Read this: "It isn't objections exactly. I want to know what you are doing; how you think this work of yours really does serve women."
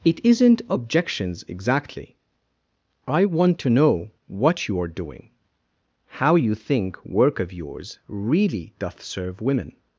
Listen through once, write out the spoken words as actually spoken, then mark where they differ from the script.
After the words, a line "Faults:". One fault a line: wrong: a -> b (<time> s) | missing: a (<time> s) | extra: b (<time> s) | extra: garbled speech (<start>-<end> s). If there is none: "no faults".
"It isn't objections exactly. I want to know what you are doing; how you think work of yours really doth serve women."
Faults:
missing: this (7.0 s)
wrong: does -> doth (8.8 s)